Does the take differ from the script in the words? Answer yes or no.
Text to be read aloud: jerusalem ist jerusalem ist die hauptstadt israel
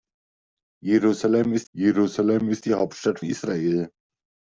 no